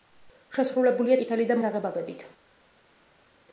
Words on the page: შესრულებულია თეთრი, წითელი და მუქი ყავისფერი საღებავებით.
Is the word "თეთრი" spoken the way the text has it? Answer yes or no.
no